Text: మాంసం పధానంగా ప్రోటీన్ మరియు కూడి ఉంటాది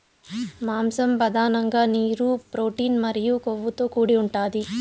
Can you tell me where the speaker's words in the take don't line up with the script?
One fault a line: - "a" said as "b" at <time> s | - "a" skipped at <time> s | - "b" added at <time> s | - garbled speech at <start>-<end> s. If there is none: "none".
- "నీరు" added at 1.9 s
- "కొవ్వుతో" added at 3.5 s